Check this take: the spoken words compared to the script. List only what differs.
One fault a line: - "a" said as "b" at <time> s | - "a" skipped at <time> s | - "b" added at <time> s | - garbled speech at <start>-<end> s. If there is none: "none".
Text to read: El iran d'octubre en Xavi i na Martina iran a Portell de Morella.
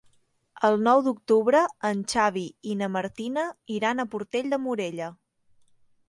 - "iran" said as "nou" at 0.8 s